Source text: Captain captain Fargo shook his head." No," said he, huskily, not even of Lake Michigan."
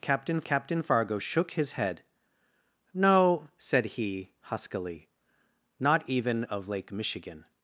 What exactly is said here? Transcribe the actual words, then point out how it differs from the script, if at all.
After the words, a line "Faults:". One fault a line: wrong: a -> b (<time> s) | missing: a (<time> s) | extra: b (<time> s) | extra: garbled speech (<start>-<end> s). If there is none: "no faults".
Captain captain Fargo shook his head." No," said he, huskily, not even of Lake Michigan."
Faults:
no faults